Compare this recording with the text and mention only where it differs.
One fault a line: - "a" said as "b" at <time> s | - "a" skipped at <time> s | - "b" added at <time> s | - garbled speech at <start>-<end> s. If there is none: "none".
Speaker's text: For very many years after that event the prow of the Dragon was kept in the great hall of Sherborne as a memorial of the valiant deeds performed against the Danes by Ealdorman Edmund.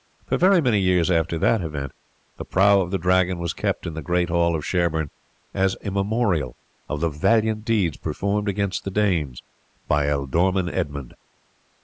none